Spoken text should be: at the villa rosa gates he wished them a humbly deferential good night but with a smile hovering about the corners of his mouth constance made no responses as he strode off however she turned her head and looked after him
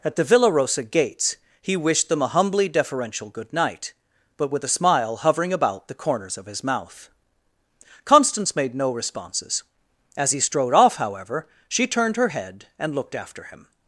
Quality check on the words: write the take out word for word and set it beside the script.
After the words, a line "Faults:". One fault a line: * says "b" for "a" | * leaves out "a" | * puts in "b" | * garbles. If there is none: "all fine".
at the villa rosa gates he wished them a humbly deferential good night but with a smile hovering about the corners of his mouth constance made no responses as he strode off however she turned her head and looked after him
Faults:
all fine